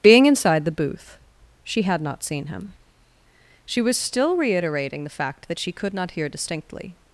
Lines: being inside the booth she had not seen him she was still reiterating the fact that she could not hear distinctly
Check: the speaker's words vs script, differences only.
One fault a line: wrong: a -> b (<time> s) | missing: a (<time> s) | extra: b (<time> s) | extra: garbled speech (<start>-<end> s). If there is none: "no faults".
no faults